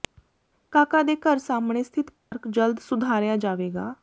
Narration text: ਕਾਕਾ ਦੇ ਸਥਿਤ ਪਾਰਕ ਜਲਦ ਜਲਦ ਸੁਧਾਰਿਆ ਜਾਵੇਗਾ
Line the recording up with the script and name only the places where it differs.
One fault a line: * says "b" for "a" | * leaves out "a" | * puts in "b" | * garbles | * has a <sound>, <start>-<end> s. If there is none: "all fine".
* puts in "ਘਰ ਸਾਹਮਣੇ"
* has a dropout, 2.2-2.3 s
* leaves out "ਜਲਦ"